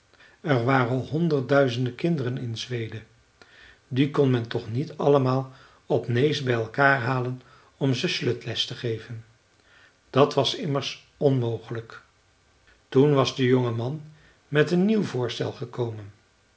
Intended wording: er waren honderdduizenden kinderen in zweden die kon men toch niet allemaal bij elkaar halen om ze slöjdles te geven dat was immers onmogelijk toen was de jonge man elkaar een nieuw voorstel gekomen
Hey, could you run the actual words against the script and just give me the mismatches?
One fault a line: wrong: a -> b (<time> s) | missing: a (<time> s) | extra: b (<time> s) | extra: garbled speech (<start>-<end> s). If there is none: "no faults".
extra: op nääs (5.8 s)
wrong: elkaar -> met (14.5 s)